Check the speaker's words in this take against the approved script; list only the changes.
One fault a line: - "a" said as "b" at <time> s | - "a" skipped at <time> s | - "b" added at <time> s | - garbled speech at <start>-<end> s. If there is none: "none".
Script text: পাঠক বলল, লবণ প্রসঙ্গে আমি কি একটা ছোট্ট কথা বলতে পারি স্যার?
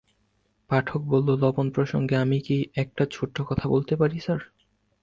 none